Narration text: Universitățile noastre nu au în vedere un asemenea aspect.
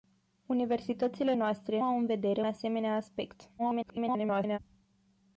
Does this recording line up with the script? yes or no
no